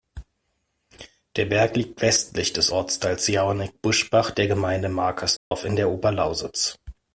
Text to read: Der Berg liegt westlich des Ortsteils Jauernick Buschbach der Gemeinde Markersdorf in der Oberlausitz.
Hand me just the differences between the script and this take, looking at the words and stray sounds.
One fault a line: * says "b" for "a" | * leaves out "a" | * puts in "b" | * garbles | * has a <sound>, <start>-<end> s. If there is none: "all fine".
* has a dropout, 5.4-5.5 s